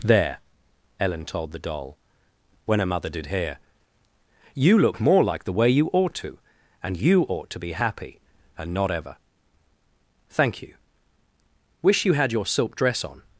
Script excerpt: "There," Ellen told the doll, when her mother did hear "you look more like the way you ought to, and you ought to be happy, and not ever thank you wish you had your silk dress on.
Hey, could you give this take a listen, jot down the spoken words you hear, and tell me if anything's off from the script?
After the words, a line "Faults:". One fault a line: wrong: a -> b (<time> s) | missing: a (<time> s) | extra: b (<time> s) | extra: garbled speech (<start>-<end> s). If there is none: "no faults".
"There," Ellen told the doll, when her mother did hear "you look more like the way you ought to, and you ought to be happy, and not ever thank you wish you had your silk dress on.
Faults:
no faults